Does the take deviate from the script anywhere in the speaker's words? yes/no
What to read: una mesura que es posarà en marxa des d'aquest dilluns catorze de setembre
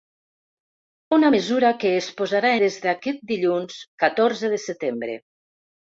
yes